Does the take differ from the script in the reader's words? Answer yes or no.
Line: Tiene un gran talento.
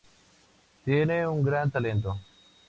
no